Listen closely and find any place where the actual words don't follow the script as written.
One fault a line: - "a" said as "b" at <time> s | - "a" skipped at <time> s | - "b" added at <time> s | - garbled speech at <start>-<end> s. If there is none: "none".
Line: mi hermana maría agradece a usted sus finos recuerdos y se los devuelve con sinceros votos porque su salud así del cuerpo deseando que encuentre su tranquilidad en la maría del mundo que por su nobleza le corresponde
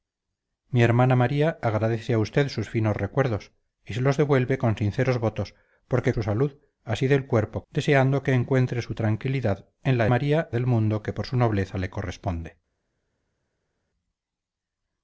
none